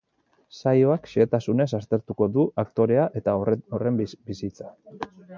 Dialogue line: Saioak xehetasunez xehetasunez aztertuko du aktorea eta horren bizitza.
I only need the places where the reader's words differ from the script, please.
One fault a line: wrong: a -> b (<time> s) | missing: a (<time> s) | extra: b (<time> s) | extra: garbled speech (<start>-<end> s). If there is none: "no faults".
missing: xehetasunez (1.7 s)